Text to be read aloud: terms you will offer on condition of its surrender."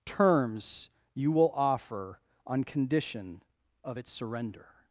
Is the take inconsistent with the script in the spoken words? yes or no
no